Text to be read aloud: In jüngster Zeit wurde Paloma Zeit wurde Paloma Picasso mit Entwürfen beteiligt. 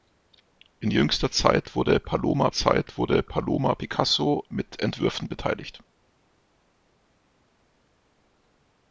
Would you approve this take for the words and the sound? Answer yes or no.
yes